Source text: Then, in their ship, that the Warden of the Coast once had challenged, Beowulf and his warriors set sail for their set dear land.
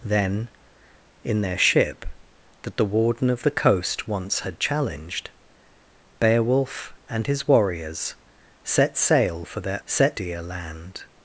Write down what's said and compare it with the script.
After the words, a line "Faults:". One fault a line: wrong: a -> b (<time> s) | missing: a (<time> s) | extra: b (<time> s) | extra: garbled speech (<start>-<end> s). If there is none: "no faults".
Then, in their ship, that the Warden of the Coast once had challenged, Beowulf and his warriors set sail for their set dear land.
Faults:
no faults